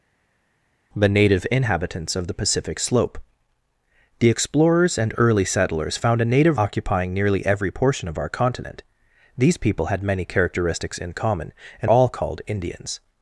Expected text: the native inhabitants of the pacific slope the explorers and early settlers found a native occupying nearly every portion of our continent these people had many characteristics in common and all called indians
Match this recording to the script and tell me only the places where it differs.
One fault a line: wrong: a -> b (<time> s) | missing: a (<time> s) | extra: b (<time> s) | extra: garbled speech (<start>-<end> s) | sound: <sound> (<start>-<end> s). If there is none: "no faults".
no faults